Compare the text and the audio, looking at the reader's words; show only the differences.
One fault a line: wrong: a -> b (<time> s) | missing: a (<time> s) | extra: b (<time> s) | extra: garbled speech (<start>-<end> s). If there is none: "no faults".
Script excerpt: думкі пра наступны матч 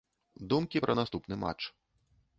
no faults